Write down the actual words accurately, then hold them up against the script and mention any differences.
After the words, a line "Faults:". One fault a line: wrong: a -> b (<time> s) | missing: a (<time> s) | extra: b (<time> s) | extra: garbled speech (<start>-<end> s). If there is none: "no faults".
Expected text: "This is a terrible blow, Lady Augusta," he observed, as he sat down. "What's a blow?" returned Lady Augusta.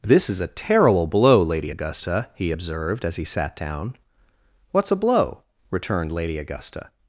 "This is a terrible blow, Lady Augusta," he observed, as he sat down. "What's a blow?" returned Lady Augusta.
Faults:
no faults